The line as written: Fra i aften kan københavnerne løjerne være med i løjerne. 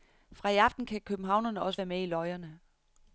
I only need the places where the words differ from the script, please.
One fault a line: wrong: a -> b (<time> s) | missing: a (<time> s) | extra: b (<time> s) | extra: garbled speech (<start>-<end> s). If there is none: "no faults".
wrong: løjerne -> også (1.6 s)